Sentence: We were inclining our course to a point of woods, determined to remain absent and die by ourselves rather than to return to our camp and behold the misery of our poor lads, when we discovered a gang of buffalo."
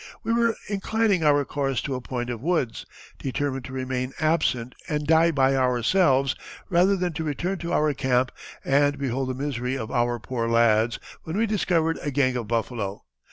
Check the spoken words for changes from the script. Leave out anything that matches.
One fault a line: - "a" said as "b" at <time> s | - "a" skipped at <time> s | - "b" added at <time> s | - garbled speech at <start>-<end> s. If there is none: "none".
none